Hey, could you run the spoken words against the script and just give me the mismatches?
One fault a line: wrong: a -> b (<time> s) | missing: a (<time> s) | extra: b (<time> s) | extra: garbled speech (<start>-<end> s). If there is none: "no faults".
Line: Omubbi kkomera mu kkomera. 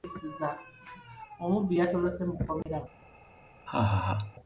wrong: kkomera -> yatolose (1.8 s)